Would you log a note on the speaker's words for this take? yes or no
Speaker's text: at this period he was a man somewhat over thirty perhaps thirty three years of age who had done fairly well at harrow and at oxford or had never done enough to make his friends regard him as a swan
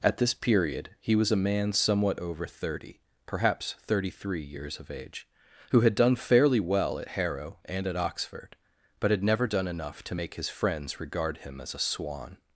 yes